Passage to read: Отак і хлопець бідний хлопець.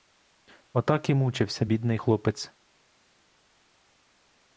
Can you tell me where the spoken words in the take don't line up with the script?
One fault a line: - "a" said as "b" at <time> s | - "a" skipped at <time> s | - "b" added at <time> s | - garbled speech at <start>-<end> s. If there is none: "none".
- "хлопець" said as "мучився" at 1.1 s